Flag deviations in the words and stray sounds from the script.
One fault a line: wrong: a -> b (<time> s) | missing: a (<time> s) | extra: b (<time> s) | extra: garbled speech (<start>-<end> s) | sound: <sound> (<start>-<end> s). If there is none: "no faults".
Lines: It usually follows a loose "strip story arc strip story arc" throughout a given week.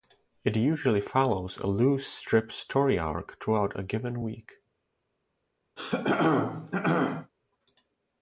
missing: strip story arc (3.4 s)
sound: throat clearing (5.8-7.3 s)